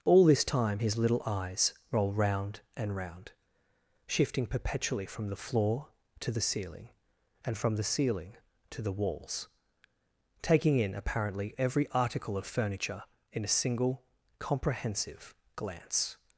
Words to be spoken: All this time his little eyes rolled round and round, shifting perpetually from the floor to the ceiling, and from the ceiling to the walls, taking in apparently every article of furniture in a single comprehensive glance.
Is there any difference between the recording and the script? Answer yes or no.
yes